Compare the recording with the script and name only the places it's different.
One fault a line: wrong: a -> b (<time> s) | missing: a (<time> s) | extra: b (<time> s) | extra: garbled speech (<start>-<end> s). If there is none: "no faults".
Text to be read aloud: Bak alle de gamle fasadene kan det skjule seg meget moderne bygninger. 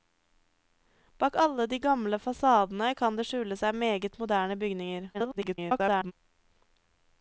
extra: garbled speech (5.1-6.1 s)